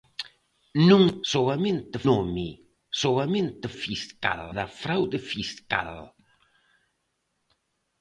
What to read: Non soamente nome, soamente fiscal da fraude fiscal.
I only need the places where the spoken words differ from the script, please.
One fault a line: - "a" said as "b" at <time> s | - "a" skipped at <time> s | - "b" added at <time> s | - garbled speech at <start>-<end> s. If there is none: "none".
none